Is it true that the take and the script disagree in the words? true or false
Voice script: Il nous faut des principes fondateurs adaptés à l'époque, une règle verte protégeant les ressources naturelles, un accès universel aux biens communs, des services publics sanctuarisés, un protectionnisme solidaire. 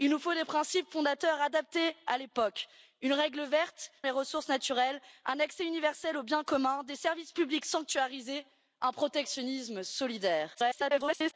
true